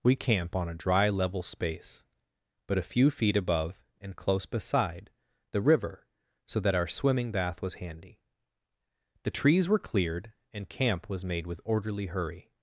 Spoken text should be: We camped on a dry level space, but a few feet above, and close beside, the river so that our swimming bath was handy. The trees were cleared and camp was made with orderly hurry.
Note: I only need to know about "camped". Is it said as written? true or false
false